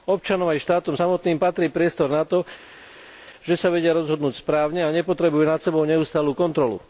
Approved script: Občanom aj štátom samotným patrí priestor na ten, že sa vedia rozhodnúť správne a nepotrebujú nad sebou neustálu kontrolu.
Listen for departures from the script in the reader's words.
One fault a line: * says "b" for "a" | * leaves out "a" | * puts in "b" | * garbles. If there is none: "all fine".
* says "to" for "ten"